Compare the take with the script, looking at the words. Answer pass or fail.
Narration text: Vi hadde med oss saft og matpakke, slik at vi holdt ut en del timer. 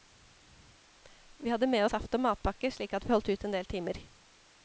fail